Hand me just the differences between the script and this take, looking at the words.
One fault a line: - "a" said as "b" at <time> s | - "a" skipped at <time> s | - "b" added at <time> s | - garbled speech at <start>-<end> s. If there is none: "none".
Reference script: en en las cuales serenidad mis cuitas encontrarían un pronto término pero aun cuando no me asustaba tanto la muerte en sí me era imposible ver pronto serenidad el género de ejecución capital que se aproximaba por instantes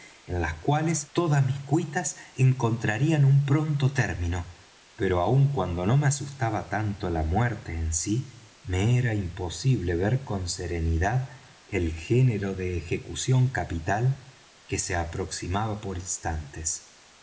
- "en" skipped at 0.4 s
- "serenidad" said as "todas" at 1.1 s
- "pronto" said as "con" at 10.2 s